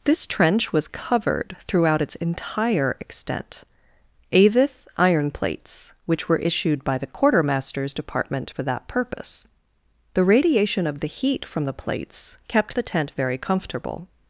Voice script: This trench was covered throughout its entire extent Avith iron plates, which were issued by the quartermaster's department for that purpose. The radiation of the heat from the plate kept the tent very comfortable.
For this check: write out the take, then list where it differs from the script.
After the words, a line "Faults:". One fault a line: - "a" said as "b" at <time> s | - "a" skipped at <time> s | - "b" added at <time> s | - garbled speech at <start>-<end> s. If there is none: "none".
This trench was covered throughout its entire extent Avith iron plates, which were issued by the quartermaster's department for that purpose. The radiation of the heat from the plates kept the tent very comfortable.
Faults:
- "plate" said as "plates" at 11.7 s